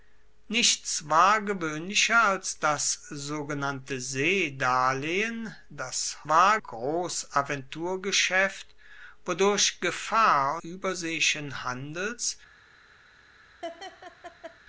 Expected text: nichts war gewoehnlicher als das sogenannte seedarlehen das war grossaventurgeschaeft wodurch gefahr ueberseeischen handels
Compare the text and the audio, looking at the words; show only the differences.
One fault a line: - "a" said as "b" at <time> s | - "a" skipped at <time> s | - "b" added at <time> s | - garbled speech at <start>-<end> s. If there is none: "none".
none